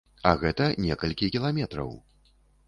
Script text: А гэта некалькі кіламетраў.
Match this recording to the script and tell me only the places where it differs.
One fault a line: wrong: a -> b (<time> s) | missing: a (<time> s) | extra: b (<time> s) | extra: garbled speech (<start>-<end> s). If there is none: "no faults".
no faults